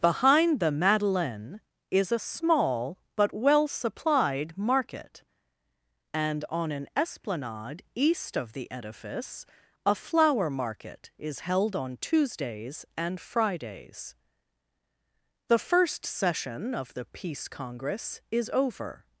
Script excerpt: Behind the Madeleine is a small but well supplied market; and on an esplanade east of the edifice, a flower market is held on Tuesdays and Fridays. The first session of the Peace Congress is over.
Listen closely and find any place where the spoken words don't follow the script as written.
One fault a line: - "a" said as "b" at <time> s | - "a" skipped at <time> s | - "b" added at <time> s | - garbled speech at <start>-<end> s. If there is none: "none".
none